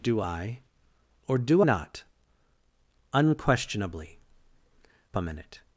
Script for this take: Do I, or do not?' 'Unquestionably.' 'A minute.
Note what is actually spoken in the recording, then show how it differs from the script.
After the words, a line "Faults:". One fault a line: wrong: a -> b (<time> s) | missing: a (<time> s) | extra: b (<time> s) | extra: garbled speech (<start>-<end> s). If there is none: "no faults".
Do I, or do not?' 'Unquestionably.' 'A minute.
Faults:
no faults